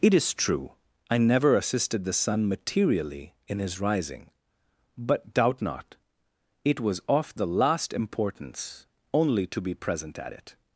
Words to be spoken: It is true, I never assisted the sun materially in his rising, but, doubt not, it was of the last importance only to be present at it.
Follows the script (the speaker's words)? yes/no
yes